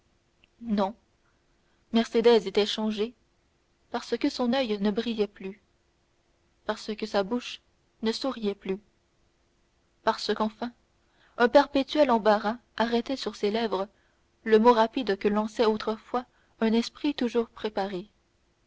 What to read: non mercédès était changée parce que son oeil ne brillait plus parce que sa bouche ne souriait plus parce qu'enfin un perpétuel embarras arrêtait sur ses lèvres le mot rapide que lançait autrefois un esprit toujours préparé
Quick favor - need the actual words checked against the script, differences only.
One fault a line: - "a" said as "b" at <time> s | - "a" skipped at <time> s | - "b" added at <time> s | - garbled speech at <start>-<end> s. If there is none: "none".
none